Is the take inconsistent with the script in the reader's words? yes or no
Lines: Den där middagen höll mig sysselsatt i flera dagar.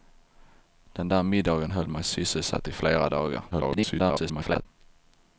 yes